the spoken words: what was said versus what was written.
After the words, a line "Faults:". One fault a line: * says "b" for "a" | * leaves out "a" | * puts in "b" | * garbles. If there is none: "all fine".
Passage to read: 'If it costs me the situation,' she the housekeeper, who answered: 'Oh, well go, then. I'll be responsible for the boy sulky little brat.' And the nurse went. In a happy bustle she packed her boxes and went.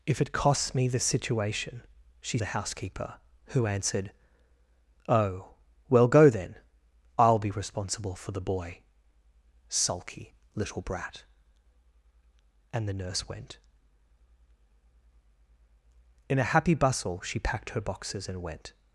'If it costs me the situation,' she the housekeeper, who answered: 'Oh, well go, then. I'll be responsible for the boy sulky little brat.' And the nurse went. In a happy bustle she packed her boxes and went.
Faults:
all fine